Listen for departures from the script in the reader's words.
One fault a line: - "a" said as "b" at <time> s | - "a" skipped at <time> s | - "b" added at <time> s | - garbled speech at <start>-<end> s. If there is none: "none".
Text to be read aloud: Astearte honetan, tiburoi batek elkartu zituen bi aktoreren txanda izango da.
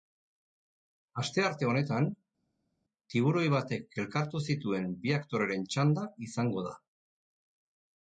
none